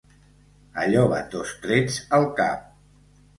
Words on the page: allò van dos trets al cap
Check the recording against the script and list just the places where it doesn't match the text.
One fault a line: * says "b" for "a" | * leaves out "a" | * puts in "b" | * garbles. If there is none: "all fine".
all fine